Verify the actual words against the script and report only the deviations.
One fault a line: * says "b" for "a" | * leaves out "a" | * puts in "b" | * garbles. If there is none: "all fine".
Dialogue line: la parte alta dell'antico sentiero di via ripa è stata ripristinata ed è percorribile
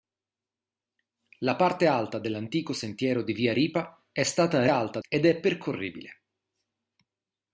* says "alta" for "ripristinata"